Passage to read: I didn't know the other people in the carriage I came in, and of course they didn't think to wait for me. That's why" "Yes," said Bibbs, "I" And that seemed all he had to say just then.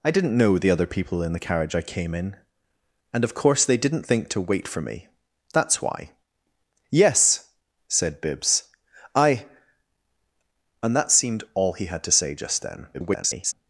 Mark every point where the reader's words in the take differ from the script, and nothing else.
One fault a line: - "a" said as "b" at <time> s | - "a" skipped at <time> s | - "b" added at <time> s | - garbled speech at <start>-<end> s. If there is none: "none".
- garbled speech at 12.9-13.5 s